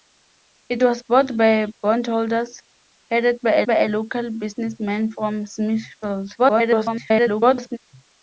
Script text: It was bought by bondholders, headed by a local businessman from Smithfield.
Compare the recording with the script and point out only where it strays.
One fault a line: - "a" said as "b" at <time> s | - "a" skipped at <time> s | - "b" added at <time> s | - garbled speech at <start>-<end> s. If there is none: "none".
- "by a" added at 3.7 s
- garbled speech at 6.4-7.8 s